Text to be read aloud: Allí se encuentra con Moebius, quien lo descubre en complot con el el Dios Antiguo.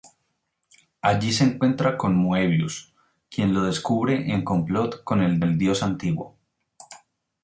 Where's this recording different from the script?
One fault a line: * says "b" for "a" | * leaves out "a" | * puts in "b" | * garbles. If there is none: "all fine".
all fine